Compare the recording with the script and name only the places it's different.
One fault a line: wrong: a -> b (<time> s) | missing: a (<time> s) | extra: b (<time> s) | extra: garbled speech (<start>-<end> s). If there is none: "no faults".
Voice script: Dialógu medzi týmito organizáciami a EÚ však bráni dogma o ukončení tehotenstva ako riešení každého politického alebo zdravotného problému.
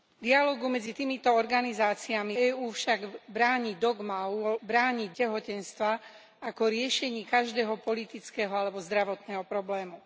missing: a (2.4 s)
wrong: ukončení -> bráni (4.6 s)